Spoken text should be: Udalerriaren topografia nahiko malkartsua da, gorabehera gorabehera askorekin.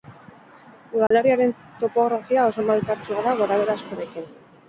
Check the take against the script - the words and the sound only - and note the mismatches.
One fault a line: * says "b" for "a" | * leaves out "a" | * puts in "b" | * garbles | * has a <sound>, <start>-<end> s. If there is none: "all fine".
* has a dropout, 1.1-1.1 s
* says "oso" for "nahiko"
* leaves out "gorabehera"